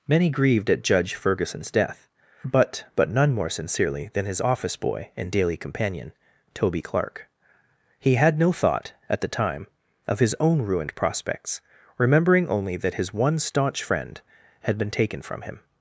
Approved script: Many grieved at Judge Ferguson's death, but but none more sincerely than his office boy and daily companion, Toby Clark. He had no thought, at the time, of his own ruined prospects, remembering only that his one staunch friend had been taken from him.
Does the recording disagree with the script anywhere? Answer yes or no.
no